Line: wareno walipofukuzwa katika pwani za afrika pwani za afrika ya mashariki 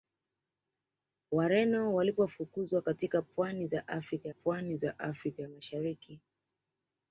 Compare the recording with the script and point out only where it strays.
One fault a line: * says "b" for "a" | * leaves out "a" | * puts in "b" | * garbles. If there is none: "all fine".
all fine